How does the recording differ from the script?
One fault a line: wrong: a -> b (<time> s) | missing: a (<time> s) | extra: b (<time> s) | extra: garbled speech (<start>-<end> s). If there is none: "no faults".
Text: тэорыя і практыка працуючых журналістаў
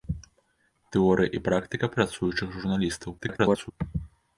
extra: garbled speech (3.2-3.7 s)